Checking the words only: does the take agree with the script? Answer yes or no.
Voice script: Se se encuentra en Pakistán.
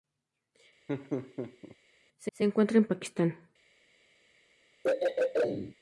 yes